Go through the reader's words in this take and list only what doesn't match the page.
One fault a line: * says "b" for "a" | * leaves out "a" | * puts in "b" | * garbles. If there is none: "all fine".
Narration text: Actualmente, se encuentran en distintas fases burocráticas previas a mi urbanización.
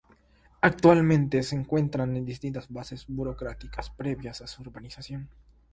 * says "su" for "mi"